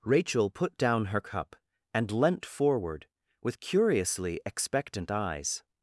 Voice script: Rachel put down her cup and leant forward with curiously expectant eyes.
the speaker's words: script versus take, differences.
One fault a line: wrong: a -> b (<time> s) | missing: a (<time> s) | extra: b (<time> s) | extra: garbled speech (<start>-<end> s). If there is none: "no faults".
no faults